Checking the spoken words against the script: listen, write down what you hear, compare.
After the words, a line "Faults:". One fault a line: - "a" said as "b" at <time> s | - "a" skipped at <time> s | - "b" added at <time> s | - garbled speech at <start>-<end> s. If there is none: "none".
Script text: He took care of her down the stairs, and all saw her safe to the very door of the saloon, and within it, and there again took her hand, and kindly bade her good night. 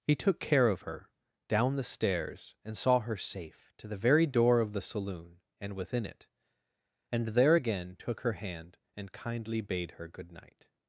He took care of her down the stairs, and saw her safe to the very door of the saloon, and within it, and there again took her hand, and kindly bade her good night.
Faults:
- "all" skipped at 2.8 s